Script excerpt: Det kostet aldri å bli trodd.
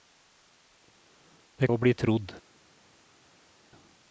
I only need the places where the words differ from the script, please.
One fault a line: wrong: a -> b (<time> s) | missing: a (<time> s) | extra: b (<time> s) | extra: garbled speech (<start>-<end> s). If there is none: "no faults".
missing: kostet aldri (1.7 s)